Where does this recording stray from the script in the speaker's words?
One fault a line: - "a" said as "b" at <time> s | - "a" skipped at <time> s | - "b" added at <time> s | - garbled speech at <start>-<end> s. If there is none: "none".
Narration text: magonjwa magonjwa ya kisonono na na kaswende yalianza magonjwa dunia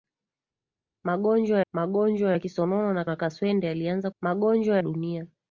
none